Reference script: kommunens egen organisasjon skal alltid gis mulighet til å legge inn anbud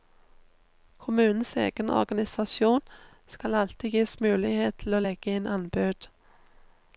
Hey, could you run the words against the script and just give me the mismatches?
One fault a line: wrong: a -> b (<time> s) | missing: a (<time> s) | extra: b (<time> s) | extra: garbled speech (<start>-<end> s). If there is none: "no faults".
no faults